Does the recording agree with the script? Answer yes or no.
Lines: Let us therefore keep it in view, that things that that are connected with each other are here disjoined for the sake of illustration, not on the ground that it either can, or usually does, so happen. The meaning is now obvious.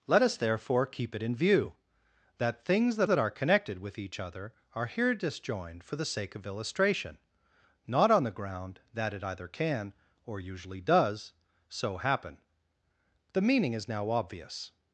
yes